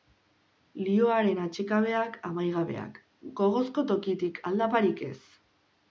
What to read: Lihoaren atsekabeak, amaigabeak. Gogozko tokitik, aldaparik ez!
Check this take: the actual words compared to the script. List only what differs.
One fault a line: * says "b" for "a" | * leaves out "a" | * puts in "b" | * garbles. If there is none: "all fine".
all fine